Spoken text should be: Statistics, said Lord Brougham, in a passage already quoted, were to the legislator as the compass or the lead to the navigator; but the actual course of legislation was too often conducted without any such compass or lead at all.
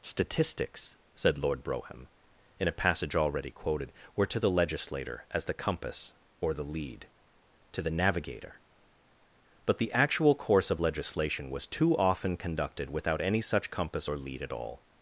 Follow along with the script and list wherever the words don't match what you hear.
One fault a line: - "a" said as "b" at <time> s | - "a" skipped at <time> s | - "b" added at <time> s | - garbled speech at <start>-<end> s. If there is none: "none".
none